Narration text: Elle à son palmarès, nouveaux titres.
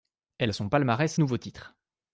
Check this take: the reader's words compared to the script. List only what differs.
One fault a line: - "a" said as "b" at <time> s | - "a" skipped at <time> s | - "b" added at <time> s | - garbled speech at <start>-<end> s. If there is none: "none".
none